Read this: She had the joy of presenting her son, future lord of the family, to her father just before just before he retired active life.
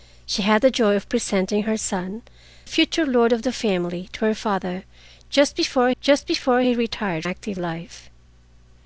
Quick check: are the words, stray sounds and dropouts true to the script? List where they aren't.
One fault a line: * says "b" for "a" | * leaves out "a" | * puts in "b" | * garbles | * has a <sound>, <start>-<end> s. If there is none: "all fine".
all fine